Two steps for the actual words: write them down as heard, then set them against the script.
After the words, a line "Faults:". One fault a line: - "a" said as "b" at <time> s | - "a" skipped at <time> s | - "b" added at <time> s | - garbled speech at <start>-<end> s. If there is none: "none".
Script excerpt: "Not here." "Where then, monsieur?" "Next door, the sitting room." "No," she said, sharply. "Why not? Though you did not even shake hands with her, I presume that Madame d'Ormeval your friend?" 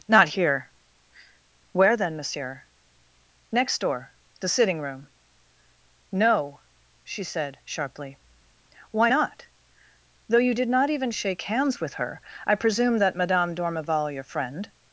"Not here." "Where then, monsieur?" "Next door, the sitting room." "No," she said, sharply. "Why not? Though you did not even shake hands with her, I presume that Madame d'Ormeval your friend?"
Faults:
none